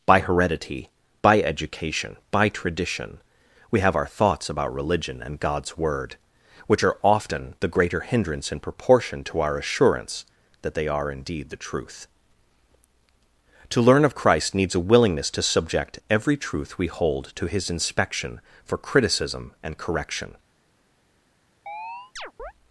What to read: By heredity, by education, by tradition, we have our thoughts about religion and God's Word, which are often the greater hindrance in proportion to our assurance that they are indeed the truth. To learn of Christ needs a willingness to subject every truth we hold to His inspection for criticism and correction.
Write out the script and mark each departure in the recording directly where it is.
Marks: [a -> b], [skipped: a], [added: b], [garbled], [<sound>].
By heredity, by education, by tradition, we have our thoughts about religion and God's Word, which are often the greater hindrance in proportion to our assurance that they are indeed the truth. To learn of Christ needs a willingness to subject every truth we hold to His inspection for criticism and correction. [chirp]